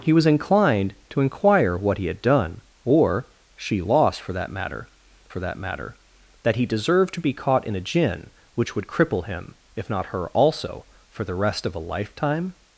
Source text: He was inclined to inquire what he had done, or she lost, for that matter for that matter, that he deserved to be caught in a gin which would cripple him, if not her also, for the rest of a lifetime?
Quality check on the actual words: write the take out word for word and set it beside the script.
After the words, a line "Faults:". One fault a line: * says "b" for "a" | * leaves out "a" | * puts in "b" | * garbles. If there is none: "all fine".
He was inclined to inquire what he had done, or she lost, for that matter for that matter, that he deserved to be caught in a gin which would cripple him, if not her also, for the rest of a lifetime?
Faults:
all fine